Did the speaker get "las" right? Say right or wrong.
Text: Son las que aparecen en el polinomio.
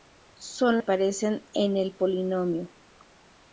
wrong